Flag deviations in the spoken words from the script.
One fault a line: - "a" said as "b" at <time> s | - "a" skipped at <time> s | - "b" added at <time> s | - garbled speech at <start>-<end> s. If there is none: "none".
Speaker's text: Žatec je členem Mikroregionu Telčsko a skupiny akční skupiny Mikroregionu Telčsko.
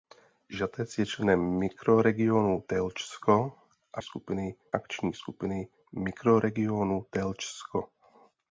none